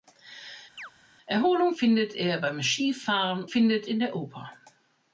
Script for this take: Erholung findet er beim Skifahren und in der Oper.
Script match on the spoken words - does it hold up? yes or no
no